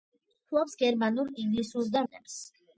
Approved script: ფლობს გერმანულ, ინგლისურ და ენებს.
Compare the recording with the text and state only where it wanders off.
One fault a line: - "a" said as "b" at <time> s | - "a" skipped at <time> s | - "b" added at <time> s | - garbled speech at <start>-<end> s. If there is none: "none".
none